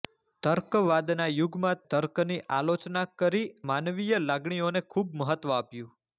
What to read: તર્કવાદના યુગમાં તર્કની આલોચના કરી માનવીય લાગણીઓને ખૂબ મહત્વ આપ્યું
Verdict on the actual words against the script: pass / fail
pass